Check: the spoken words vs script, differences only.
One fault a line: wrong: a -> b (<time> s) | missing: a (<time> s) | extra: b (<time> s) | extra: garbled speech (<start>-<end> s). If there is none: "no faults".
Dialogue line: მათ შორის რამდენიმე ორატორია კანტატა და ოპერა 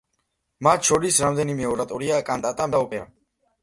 no faults